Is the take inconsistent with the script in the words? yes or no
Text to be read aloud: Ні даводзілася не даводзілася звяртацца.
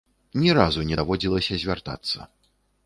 yes